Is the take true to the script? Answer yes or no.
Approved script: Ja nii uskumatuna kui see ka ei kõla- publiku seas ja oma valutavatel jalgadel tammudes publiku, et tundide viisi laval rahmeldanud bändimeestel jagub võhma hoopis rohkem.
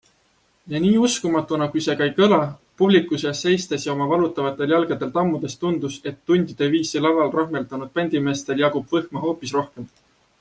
no